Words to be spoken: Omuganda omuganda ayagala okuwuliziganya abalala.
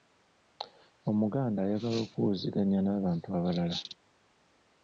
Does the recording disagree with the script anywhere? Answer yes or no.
yes